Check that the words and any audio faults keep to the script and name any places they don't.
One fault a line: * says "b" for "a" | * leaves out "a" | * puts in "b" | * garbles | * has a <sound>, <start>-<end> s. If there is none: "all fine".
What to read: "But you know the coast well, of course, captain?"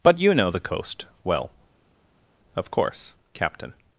all fine